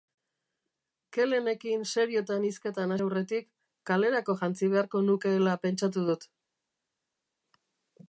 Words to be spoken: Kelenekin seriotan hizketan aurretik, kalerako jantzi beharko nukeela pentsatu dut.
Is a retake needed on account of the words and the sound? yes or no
no